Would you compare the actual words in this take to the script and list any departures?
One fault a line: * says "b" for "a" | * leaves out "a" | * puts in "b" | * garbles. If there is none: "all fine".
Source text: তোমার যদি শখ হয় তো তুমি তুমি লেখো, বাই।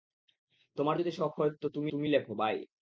all fine